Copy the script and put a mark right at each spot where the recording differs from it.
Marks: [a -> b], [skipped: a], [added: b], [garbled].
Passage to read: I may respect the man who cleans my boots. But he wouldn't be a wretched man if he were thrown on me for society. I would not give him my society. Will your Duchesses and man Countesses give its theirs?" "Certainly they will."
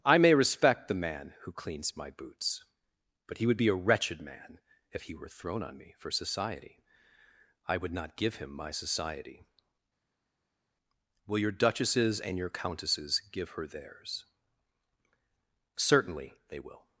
I may respect the man who cleans my boots. But he [wouldn't -> would] be a wretched man if he were thrown on me for society. I would not give him my society. Will your Duchesses and [man -> your] Countesses give [its -> her] theirs?" "Certainly they will."